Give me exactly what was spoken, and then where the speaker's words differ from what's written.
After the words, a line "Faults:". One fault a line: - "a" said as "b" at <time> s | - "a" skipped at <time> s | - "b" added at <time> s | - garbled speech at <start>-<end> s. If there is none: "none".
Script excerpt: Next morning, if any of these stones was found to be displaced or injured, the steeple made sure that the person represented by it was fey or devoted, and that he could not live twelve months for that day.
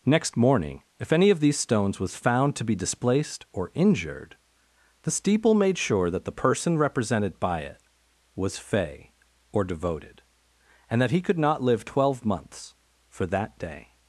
Next morning, if any of these stones was found to be displaced or injured, the steeple made sure that the person represented by it was fey or devoted, and that he could not live twelve months for that day.
Faults:
none